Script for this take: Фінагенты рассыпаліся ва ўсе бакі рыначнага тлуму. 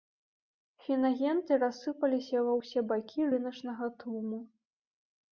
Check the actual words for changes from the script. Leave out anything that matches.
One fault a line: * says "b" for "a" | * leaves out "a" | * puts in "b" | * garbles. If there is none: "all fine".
all fine